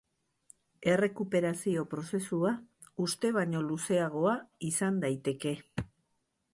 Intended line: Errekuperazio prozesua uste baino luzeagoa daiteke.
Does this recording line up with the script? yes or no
no